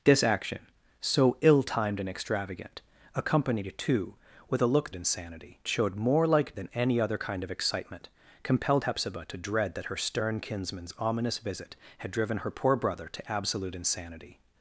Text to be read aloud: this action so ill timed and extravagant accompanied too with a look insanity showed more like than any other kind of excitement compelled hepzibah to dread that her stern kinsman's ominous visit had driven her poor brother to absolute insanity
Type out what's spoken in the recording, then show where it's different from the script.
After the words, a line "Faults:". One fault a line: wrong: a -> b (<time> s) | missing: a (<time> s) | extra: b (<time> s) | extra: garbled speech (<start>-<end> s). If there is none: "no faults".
this action so ill timed and extravagant accompanied too with a look insanity showed more like than any other kind of excitement compelled hepzibah to dread that her stern kinsman's ominous visit had driven her poor brother to absolute insanity
Faults:
no faults